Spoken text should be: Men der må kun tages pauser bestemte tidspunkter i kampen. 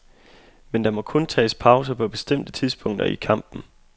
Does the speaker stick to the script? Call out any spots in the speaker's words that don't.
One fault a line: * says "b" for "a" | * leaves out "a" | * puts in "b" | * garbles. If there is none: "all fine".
* puts in "på"